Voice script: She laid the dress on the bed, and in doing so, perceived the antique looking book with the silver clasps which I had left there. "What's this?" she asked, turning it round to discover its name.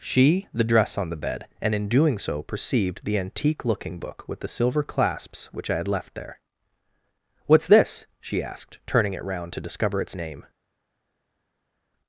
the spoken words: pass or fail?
fail